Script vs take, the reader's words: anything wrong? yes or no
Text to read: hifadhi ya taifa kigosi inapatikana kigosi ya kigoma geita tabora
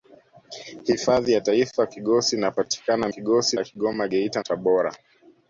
no